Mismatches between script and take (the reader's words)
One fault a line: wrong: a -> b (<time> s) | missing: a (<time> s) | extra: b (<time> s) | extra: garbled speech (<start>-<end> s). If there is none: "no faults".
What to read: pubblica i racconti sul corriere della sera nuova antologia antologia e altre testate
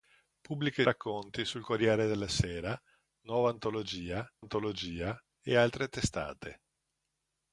no faults